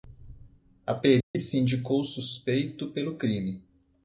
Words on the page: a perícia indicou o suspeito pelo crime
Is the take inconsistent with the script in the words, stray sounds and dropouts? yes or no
yes